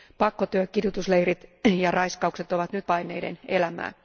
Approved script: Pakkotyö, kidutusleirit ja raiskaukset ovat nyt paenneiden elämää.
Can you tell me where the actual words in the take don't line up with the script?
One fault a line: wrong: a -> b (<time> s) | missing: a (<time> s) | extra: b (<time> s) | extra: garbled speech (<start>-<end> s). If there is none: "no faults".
no faults